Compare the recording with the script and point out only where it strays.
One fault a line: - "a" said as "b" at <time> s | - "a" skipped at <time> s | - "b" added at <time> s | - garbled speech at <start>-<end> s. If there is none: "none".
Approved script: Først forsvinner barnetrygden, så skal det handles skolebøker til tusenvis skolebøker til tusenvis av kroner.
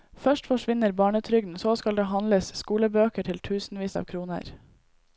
- "skolebøker til tusenvis" skipped at 4.0 s